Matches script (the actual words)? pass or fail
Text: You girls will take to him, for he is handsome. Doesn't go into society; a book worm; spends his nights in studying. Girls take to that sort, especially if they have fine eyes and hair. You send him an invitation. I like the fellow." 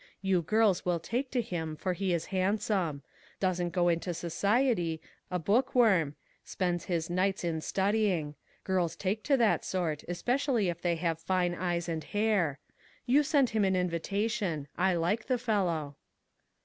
pass